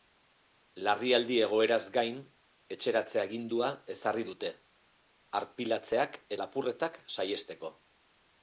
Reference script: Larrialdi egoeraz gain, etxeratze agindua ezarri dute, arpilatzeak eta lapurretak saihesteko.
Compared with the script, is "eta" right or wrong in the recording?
wrong